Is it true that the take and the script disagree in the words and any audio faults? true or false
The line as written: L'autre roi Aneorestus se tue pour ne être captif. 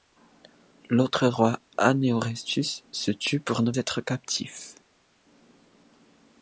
false